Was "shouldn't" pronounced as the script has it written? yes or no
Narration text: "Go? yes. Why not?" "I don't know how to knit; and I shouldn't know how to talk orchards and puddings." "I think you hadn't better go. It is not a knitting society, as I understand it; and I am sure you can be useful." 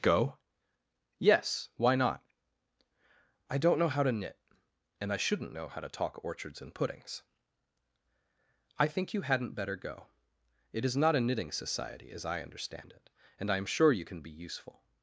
yes